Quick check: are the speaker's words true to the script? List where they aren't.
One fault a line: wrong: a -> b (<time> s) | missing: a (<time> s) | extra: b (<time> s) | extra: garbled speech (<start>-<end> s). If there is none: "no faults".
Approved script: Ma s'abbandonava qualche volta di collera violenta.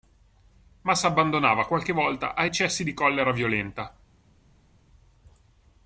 extra: a eccessi (2.3 s)